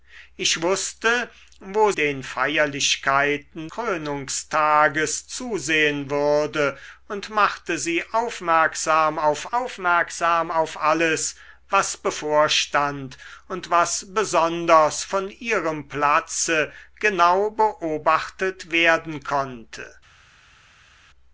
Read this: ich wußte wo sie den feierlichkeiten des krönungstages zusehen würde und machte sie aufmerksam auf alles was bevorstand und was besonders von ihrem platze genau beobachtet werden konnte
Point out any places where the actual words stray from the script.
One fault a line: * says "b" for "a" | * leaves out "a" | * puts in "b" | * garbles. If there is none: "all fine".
* leaves out "sie"
* leaves out "des"
* puts in "aufmerksam auf"